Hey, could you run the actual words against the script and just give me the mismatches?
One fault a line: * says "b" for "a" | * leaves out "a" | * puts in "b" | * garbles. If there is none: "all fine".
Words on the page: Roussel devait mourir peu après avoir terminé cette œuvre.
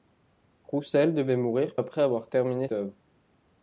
* leaves out "peu"
* leaves out "cette"